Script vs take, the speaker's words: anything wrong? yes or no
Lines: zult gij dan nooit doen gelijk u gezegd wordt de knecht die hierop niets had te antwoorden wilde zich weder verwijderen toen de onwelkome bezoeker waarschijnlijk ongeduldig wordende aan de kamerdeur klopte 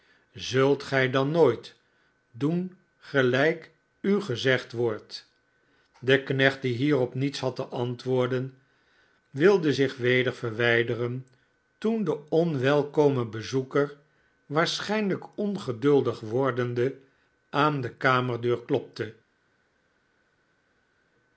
no